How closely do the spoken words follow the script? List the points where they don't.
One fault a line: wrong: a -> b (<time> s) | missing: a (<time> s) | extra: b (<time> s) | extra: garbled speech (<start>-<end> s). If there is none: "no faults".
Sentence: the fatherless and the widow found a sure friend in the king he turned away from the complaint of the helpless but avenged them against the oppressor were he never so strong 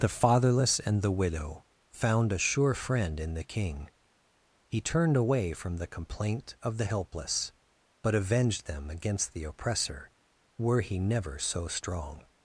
no faults